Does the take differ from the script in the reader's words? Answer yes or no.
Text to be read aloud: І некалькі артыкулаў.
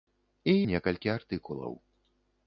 no